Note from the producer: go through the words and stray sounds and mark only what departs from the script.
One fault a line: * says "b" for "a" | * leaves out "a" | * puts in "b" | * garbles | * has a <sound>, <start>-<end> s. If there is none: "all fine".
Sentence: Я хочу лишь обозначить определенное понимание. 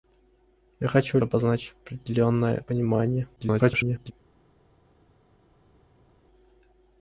* leaves out "лишь"
* garbles